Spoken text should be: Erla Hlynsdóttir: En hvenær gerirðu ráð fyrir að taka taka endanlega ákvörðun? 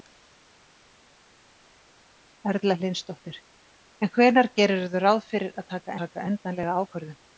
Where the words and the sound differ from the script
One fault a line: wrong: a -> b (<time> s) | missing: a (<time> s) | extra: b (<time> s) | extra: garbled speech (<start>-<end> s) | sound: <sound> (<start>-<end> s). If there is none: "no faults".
no faults